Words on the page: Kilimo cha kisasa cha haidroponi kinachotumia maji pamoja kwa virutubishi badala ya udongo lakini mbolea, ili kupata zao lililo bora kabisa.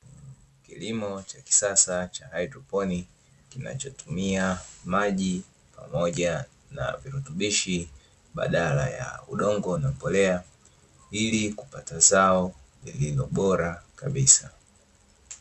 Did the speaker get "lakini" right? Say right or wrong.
wrong